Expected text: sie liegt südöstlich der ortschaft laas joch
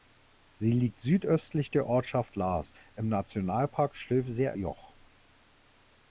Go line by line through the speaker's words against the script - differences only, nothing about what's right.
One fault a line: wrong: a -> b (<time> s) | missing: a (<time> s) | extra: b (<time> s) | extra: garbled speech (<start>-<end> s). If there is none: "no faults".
extra: im nationalpark stilfser (3.0 s)